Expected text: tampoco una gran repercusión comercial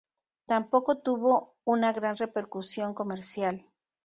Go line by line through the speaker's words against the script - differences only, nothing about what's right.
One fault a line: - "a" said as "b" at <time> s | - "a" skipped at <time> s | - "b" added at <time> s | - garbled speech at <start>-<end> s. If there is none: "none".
- "tuvo" added at 1.0 s